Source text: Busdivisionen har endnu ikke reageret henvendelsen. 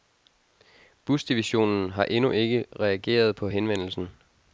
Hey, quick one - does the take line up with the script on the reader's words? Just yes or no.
no